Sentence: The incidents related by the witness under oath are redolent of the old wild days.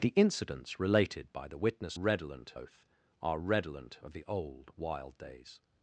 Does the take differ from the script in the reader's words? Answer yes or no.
yes